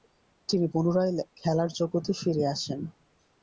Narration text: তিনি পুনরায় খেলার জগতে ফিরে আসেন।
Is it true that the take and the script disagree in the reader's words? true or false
false